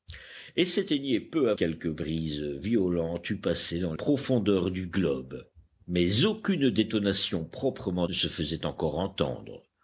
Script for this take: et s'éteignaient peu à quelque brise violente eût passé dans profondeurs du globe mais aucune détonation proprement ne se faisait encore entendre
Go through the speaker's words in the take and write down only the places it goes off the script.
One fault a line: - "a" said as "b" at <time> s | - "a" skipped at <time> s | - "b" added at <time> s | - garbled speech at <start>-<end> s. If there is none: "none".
none